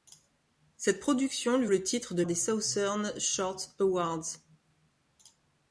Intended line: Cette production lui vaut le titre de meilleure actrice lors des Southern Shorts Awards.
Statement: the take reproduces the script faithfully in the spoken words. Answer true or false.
false